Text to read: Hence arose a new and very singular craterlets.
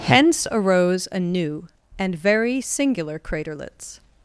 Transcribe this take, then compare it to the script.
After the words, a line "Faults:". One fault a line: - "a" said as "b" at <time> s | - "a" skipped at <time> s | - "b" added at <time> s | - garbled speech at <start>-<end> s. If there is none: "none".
Hence arose a new and very singular craterlets.
Faults:
none